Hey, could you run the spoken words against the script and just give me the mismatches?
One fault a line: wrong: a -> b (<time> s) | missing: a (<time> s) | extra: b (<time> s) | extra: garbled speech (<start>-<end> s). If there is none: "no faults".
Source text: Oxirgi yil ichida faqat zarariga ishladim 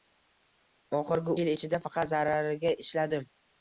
no faults